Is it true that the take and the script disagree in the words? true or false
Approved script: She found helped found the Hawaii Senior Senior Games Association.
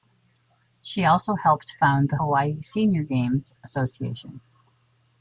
true